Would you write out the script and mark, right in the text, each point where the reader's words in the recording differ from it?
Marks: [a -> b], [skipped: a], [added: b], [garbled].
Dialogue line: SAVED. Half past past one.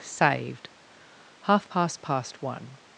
SAVED. Half past past one.